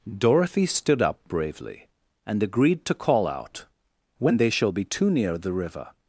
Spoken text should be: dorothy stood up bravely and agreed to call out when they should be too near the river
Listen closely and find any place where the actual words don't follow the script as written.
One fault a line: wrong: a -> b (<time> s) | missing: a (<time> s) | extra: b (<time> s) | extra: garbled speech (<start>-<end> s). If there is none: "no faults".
wrong: should -> shall (4.5 s)